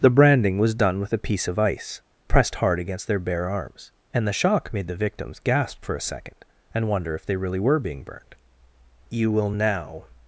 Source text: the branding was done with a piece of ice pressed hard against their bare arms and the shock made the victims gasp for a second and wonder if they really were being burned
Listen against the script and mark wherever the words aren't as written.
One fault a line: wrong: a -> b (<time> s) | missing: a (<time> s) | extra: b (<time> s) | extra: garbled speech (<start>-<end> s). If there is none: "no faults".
extra: you will now (9.1 s)